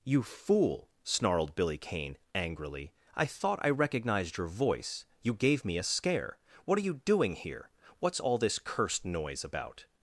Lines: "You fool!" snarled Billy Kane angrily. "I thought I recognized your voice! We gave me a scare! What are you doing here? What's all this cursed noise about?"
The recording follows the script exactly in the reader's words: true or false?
false